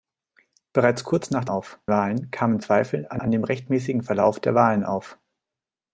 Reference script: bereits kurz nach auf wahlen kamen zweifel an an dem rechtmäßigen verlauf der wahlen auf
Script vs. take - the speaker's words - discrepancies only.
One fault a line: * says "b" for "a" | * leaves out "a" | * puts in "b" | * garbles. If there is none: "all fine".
all fine